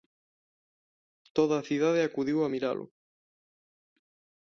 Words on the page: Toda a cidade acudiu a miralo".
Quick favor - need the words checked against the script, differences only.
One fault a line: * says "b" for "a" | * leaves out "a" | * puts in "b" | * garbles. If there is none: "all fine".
all fine